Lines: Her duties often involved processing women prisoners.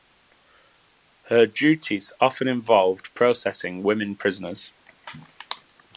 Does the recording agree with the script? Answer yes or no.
yes